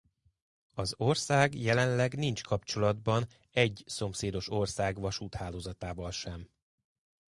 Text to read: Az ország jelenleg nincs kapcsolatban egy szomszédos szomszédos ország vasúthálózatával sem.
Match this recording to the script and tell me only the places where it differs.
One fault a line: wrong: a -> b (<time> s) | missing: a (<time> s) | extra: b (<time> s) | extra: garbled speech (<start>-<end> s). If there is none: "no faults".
missing: szomszédos (4.5 s)